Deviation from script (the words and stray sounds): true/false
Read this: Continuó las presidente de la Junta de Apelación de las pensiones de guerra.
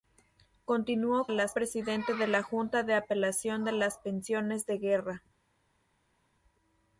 false